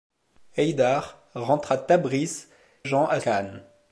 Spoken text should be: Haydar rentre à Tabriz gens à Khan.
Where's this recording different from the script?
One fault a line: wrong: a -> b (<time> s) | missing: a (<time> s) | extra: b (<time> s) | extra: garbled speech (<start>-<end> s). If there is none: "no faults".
no faults